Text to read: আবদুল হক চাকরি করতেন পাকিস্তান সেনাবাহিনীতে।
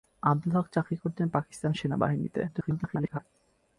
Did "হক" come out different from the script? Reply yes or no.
no